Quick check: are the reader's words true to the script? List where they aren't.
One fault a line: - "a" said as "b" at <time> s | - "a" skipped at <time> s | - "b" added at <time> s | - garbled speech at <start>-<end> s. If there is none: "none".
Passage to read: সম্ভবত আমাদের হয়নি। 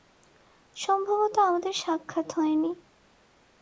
- "সাক্ষাৎ" added at 1.7 s